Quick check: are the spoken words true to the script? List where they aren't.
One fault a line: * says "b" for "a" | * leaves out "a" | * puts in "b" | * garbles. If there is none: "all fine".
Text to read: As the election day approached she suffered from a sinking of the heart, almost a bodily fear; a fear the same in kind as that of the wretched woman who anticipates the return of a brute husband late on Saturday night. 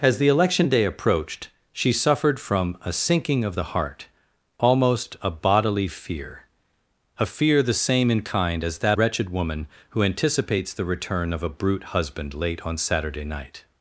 * leaves out "of the"